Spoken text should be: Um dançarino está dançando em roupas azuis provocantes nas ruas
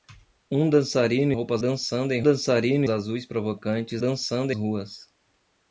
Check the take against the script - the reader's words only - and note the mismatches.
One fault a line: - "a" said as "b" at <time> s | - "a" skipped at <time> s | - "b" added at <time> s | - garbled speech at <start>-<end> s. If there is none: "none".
- "está" said as "roupas" at 1.3 s
- "roupas" said as "dançarino" at 2.2 s
- "nas" said as "dançando" at 4.0 s